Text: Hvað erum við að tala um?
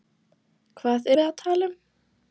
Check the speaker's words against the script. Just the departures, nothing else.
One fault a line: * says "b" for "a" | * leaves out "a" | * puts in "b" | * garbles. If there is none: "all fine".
* leaves out "erum"